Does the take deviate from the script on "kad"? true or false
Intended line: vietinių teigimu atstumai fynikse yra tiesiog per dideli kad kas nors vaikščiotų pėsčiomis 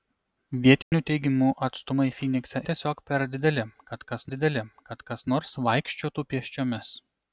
false